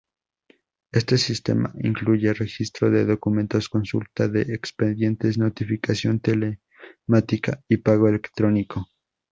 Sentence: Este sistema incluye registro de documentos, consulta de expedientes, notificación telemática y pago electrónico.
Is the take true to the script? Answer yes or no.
yes